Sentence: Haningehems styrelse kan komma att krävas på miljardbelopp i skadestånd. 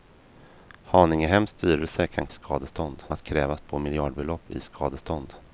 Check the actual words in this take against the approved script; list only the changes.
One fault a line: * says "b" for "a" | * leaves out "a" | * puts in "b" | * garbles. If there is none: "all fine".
* says "skadestånd" for "komma"